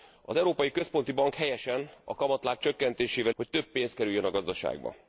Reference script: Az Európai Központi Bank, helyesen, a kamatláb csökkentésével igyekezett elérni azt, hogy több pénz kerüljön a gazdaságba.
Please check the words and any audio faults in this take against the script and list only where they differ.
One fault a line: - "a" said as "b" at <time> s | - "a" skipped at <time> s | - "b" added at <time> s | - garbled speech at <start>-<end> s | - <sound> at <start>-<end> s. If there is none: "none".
- "igyekezett elérni azt" skipped at 3.3 s